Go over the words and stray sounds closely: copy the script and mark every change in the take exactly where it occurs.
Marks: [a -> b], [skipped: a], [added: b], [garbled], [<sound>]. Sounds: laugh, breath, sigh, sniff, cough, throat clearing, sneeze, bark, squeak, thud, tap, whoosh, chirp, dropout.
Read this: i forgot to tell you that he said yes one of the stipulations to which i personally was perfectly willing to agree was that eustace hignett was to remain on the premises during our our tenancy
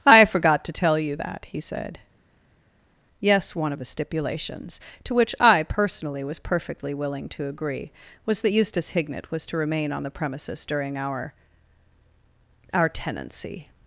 i forgot to tell you that he said yes one of the stipulations to which i personally was perfectly willing to agree was that eustace hignett was to remain on the premises during our our tenancy